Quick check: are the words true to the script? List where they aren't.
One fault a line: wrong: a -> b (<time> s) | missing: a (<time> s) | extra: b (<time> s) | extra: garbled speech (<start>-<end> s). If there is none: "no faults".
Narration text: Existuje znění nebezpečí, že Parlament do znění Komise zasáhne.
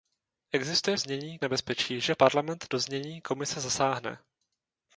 no faults